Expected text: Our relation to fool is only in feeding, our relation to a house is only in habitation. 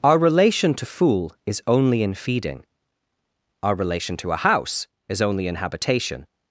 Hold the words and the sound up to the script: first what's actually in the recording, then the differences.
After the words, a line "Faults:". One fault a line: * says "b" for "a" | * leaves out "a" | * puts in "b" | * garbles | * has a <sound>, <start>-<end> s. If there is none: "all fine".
Our relation to fool is only in feeding, our relation to a house is only in habitation.
Faults:
all fine